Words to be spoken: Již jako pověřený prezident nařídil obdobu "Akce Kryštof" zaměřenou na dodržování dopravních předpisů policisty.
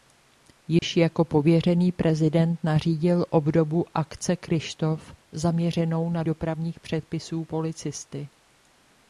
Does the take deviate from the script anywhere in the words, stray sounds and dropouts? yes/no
yes